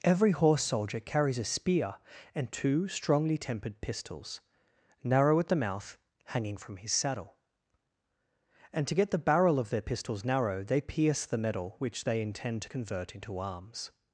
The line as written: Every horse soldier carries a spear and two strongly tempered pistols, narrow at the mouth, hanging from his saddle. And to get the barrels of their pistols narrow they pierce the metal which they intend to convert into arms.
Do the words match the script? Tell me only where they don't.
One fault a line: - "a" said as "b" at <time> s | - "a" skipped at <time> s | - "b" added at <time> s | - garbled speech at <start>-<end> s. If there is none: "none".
- "barrels" said as "barrel" at 9.2 s